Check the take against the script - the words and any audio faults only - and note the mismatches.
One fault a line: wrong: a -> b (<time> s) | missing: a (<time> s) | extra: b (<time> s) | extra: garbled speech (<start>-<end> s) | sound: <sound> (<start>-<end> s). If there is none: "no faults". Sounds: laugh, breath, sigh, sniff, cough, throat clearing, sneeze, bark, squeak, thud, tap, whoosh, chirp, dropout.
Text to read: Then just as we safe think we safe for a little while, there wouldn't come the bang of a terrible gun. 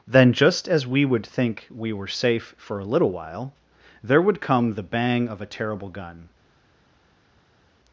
wrong: safe -> would (1.1 s)
extra: were (1.9 s)
wrong: wouldn't -> would (4.2 s)